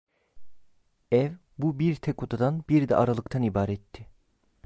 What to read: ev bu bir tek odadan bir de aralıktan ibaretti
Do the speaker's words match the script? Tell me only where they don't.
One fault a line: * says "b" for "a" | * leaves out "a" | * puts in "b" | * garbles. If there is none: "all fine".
all fine